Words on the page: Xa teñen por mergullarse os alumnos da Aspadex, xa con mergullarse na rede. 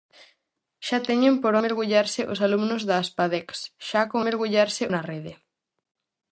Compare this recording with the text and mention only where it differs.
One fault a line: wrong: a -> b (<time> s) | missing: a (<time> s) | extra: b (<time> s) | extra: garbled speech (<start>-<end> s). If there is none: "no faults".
no faults